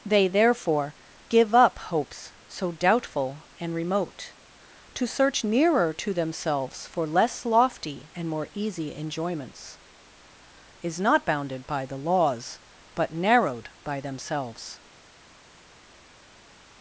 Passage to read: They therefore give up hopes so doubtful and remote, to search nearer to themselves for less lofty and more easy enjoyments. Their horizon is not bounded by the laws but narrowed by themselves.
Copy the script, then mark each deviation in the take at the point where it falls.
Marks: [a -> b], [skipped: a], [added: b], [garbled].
They therefore give up hopes so doubtful and remote, to search nearer to themselves for less lofty and more easy enjoyments. [skipped: Their horizon] is not bounded by the laws but narrowed by themselves.